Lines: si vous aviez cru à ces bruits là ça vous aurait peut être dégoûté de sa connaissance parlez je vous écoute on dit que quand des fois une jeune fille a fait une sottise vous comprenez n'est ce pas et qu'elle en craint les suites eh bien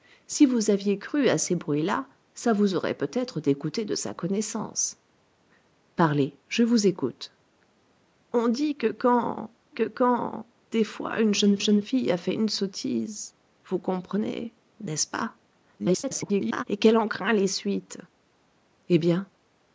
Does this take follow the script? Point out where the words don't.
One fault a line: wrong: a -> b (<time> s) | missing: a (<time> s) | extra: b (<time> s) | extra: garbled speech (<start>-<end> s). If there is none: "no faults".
extra: que quand (9.7 s)
extra: jeune (11.6 s)
extra: garbled speech (15.8-16.6 s)